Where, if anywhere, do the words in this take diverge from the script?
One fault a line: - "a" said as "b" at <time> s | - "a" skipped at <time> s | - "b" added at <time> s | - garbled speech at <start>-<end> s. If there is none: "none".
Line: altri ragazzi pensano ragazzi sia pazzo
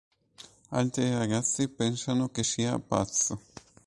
- "ragazzi" said as "che" at 2.3 s